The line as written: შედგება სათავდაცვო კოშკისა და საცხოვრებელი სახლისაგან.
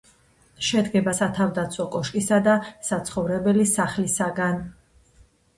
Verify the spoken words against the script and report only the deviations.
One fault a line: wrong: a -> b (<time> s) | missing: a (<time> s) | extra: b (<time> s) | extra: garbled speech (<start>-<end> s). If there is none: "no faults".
no faults